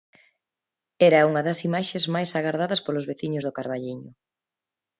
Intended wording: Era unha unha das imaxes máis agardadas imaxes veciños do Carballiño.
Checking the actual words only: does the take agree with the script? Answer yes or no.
no